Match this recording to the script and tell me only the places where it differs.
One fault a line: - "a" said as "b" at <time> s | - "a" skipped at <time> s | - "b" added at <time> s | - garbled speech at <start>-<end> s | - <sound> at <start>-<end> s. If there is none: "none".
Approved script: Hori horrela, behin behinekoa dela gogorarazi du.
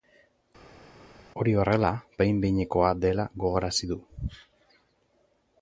none